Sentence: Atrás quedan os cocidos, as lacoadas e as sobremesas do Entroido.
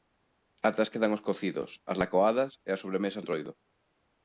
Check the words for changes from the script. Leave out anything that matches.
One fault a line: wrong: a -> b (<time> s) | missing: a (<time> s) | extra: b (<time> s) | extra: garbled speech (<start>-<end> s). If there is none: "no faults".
missing: do (3.2 s)